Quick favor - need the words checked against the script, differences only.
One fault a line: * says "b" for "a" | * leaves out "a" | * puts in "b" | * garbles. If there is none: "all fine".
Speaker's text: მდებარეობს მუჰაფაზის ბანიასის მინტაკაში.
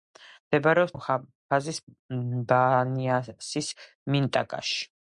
all fine